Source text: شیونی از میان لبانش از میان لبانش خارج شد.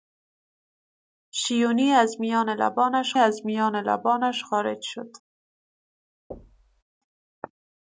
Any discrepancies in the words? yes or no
no